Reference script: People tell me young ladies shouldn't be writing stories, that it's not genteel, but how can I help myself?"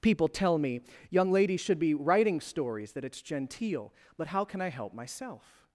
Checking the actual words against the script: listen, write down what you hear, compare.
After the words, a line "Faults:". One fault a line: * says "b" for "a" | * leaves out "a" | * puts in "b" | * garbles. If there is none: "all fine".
People tell me young ladies should be writing stories, that it's genteel, but how can I help myself?"
Faults:
* says "should" for "shouldn't"
* leaves out "not"